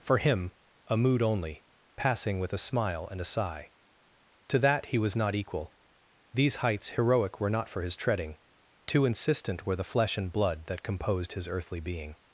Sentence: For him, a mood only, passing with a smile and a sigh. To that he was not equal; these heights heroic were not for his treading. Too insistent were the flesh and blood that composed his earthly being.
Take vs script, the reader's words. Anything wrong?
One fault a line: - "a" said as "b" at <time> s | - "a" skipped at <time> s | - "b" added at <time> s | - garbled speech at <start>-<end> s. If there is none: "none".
none